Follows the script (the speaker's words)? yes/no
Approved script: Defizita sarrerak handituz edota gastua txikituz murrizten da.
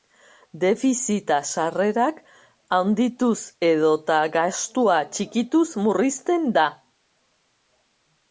yes